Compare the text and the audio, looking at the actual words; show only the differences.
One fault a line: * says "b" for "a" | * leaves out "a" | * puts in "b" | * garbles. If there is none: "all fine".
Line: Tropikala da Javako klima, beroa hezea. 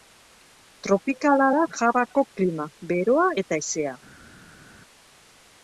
* puts in "eta"